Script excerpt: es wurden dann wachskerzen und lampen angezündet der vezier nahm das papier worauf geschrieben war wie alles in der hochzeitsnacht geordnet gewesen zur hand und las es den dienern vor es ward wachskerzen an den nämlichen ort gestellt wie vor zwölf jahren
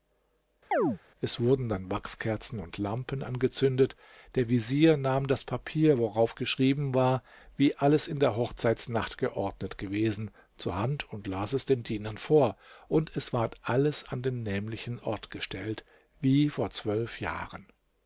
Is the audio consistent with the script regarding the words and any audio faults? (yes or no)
no